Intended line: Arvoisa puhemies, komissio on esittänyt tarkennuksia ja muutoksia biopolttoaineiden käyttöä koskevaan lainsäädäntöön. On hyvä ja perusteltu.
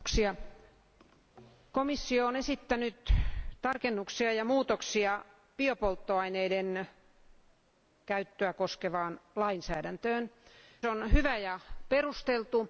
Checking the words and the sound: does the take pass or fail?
pass